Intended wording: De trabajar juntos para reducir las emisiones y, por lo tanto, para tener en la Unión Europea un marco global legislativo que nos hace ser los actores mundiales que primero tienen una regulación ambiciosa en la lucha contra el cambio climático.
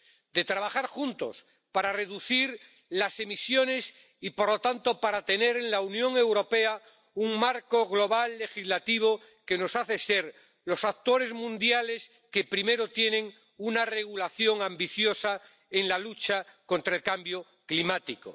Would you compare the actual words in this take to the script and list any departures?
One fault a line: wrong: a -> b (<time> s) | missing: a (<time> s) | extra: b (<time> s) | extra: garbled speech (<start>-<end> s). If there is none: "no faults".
no faults